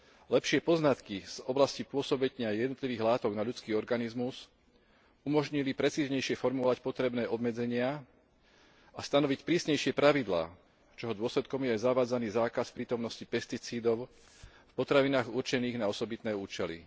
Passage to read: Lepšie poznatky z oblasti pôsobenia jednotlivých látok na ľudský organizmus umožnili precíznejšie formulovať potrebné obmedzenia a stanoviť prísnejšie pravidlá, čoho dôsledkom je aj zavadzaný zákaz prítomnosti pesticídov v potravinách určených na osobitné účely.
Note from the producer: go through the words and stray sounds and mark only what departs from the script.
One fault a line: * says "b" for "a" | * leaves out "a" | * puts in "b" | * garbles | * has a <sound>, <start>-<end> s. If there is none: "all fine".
all fine